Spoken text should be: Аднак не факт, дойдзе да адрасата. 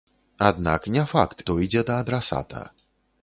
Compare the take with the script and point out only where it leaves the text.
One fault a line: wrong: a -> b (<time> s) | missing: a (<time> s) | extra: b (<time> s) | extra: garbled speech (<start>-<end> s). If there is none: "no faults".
no faults